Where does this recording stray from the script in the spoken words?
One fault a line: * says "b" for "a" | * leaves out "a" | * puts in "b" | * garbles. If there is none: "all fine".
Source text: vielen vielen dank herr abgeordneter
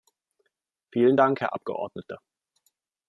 * leaves out "vielen"